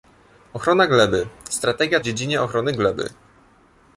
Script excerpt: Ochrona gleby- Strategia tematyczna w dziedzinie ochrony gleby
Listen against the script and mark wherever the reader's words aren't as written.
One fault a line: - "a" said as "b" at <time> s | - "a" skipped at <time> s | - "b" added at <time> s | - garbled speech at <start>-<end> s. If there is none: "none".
- "tematyczna" skipped at 2.0 s